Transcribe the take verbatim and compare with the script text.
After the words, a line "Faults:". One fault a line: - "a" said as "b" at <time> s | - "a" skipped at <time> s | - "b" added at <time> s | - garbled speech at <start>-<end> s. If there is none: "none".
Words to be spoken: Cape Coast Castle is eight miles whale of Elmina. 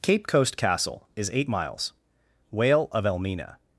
Cape Coast Castle is eight miles whale of Elmina.
Faults:
none